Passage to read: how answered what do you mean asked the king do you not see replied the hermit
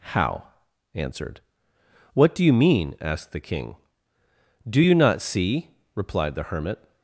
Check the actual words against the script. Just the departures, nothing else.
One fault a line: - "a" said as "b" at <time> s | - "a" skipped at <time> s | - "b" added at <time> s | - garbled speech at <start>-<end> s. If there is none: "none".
none